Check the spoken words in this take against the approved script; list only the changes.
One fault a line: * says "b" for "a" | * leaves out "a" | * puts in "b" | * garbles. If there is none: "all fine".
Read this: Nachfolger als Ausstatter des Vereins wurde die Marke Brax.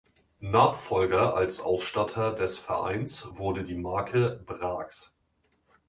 all fine